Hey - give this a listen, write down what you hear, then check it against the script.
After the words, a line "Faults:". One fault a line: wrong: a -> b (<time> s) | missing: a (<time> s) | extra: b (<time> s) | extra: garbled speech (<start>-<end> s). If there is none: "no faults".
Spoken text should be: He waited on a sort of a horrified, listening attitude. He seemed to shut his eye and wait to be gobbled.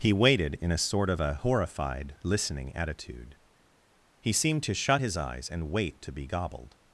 He waited in a sort of a horrified, listening attitude. He seemed to shut his eyes and wait to be gobbled.
Faults:
wrong: on -> in (0.6 s)
wrong: eye -> eyes (5.2 s)